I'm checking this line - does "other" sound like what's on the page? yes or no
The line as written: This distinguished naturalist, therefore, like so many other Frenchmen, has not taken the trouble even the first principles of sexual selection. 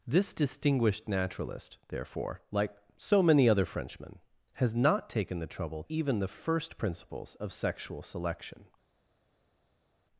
yes